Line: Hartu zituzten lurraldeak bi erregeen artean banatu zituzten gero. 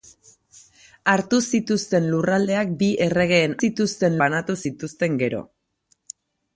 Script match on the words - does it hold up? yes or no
no